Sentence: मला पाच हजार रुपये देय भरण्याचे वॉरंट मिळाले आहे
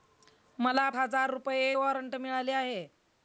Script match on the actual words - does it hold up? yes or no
no